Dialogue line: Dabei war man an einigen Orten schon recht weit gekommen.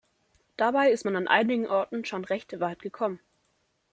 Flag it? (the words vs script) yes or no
yes